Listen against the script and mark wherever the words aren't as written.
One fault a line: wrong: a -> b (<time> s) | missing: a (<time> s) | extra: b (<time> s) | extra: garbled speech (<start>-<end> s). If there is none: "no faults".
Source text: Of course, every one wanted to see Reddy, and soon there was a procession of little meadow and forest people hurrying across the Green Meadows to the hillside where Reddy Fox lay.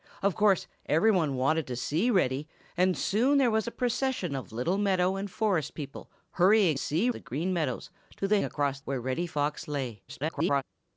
wrong: across -> see (6.7 s)
wrong: hillside -> across (8.4 s)
extra: garbled speech (10.1-10.6 s)